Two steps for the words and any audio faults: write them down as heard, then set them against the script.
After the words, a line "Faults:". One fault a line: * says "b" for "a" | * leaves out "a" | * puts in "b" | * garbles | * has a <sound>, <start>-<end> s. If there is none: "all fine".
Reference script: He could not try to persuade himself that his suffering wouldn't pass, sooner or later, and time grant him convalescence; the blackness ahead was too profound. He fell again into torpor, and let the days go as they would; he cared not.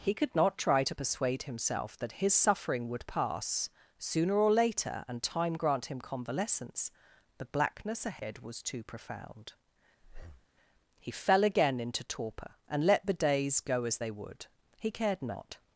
He could not try to persuade himself that his suffering would pass, sooner or later, and time grant him convalescence; the blackness ahead was too profound. He fell again into torpor, and let the days go as they would; he cared not.
Faults:
* says "would" for "wouldn't"
* has a breath, 10.0-10.5 s